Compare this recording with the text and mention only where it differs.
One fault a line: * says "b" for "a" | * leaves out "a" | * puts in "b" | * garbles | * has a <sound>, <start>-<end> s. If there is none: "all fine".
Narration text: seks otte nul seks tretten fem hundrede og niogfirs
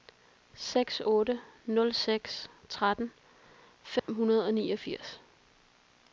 * has a dropout, 4.0-4.1 s